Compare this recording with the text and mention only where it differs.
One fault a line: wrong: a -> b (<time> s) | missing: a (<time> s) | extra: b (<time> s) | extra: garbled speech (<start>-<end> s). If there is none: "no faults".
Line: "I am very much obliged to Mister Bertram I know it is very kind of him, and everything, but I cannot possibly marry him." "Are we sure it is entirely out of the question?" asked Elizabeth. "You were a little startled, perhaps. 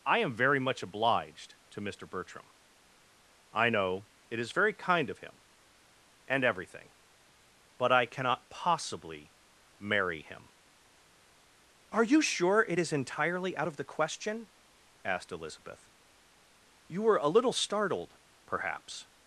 wrong: we -> you (12.0 s)